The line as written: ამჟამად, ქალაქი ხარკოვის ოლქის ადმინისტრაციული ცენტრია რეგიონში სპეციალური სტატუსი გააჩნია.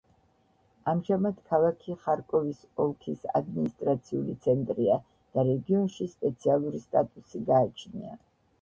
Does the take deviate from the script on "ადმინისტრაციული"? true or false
false